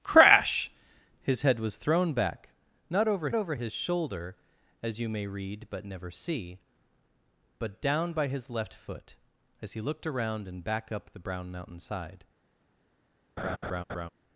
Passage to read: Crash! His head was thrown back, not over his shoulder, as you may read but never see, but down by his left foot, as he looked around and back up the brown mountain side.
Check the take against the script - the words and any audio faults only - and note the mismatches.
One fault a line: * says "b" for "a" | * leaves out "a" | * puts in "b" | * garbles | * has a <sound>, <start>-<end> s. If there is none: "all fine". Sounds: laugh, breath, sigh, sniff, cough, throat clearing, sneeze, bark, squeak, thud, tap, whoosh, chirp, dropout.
* puts in "over"
* has a laugh, 13.4-14.1 s